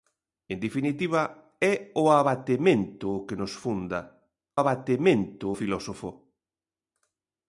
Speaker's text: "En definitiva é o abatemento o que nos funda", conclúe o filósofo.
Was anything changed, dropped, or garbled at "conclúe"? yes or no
yes